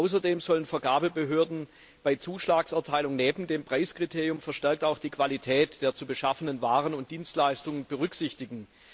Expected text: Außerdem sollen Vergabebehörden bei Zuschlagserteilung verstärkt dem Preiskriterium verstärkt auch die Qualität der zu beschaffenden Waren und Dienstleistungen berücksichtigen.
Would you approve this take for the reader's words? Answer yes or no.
no